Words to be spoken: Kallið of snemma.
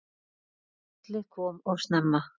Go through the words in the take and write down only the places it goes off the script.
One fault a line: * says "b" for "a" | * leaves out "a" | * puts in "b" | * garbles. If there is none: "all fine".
* puts in "kom"